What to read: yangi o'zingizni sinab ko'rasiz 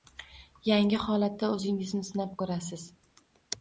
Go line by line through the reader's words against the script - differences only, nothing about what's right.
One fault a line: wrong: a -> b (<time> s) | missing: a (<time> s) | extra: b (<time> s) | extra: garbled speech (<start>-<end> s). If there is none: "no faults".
extra: holatda (1.0 s)